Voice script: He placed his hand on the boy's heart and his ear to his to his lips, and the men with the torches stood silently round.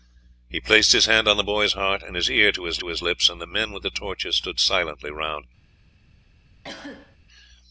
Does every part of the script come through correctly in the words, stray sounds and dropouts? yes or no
no